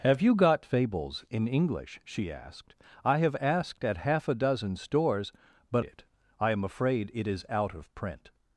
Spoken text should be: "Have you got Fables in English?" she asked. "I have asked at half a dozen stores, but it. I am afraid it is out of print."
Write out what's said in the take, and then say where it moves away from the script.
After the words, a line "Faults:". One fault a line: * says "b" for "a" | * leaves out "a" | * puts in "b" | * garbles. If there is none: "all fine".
"Have you got Fables in English?" she asked. "I have asked at half a dozen stores, but it. I am afraid it is out of print."
Faults:
all fine